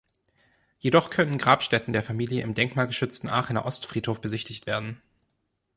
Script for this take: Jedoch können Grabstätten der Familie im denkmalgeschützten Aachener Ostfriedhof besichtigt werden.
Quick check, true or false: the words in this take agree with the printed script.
true